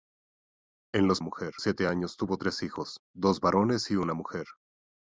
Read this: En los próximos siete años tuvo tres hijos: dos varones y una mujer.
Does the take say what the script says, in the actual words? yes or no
no